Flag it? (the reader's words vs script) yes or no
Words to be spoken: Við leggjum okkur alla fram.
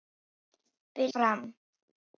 yes